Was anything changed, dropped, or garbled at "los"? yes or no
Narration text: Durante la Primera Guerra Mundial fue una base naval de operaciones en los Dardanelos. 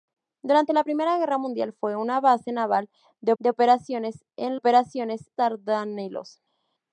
yes